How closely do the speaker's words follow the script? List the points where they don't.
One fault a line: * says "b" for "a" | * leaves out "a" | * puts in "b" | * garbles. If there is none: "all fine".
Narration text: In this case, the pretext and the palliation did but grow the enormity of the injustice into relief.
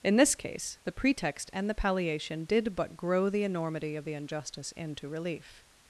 all fine